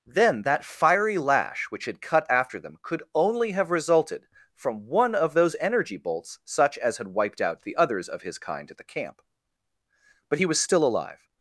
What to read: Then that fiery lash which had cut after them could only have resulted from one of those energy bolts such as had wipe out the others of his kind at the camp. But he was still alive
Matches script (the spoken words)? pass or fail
fail